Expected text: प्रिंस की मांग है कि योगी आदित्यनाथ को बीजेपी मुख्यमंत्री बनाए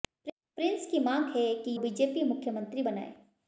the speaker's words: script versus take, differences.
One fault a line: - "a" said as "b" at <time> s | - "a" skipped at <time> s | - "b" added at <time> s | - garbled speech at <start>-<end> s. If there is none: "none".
- "योगी आदित्यनाथ को" skipped at 1.8 s